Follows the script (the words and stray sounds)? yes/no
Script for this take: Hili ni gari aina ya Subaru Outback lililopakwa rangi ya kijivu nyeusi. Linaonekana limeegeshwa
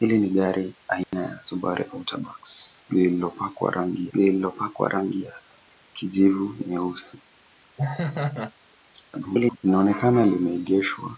no